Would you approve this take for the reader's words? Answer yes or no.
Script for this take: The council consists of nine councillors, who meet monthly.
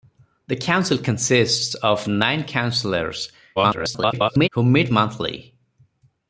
no